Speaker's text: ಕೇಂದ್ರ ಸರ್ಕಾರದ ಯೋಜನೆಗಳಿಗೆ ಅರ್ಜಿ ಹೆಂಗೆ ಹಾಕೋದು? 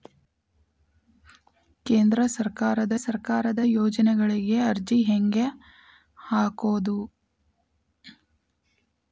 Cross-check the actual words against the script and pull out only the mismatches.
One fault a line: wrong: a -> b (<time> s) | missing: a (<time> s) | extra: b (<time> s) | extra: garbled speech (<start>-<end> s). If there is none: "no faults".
extra: ಸರ್ಕಾರದ (3.0 s)